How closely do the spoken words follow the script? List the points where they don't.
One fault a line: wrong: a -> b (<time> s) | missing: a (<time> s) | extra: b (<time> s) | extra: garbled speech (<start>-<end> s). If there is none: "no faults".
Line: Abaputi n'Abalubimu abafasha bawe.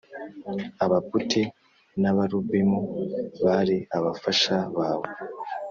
extra: bari (3.4 s)